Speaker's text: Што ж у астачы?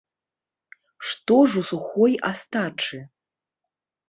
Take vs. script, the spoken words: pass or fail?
fail